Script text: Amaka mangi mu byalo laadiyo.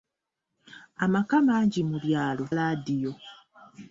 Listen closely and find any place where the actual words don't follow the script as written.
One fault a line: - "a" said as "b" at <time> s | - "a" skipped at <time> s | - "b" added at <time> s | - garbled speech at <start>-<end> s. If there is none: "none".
none